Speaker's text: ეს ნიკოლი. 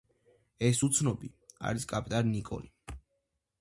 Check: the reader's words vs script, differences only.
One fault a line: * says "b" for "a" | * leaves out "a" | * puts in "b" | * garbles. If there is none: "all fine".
* puts in "უცნობი არის კაპიტანი"